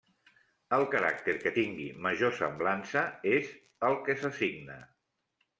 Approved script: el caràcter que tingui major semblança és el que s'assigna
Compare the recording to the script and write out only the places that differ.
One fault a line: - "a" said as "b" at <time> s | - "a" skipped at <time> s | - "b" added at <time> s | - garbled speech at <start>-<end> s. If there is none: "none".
none